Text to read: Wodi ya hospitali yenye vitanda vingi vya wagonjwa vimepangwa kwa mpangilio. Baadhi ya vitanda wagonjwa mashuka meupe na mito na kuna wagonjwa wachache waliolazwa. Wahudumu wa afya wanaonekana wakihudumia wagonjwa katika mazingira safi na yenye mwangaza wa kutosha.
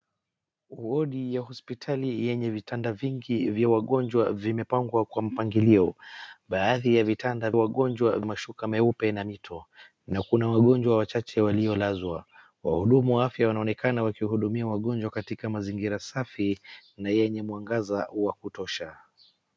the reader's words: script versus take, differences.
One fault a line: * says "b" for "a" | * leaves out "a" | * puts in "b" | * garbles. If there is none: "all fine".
all fine